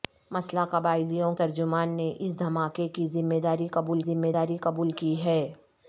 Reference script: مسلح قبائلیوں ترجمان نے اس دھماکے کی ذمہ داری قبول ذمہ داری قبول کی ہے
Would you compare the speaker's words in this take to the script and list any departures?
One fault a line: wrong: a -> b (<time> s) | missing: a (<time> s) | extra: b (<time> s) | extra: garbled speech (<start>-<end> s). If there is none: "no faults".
no faults